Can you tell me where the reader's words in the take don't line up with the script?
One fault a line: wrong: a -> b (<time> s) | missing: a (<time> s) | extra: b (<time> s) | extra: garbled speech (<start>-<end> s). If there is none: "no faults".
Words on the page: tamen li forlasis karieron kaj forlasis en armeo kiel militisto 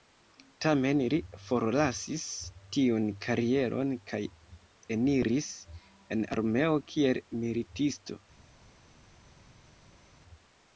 extra: tiun (2.8 s)
wrong: forlasis -> eniris (5.0 s)